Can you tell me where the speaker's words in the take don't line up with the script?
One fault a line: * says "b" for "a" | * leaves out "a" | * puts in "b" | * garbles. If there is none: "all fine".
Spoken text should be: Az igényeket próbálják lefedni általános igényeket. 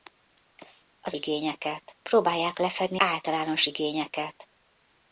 all fine